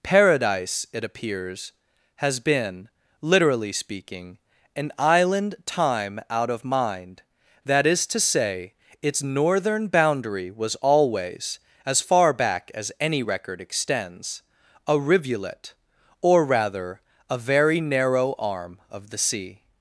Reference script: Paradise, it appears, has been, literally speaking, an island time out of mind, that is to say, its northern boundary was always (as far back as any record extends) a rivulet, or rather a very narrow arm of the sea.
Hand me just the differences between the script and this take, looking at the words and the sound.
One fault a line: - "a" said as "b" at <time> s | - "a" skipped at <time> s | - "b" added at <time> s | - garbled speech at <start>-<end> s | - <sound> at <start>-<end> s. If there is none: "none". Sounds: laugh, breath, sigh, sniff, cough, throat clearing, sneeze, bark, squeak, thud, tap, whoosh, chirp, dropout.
none